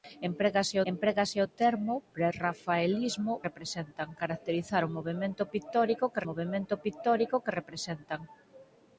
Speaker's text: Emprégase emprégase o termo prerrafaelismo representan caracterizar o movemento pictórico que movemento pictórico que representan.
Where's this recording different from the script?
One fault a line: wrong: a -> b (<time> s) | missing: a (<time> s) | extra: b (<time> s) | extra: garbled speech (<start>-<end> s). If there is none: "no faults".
no faults